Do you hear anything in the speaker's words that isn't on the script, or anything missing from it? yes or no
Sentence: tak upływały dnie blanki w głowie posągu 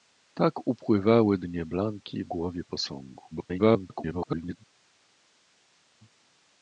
yes